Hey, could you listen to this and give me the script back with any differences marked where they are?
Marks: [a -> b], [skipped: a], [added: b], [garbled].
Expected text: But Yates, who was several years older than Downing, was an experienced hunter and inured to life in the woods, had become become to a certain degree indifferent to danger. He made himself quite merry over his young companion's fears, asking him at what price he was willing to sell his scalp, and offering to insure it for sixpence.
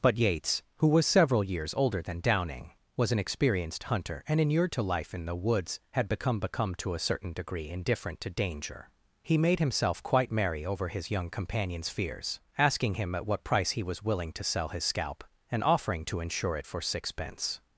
But Yates, who was several years older than Downing, was an experienced hunter and inured to life in the woods, had become become to a certain degree indifferent to danger. He made himself quite merry over his young companion's fears, asking him at what price he was willing to sell his scalp, and offering to insure it for sixpence.